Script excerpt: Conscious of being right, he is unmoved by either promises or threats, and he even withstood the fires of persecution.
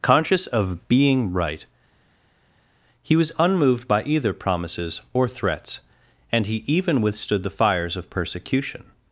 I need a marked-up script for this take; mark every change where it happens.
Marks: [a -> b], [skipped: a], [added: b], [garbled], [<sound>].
Conscious of being right, he [is -> was] unmoved by either promises or threats, and he even withstood the fires of persecution.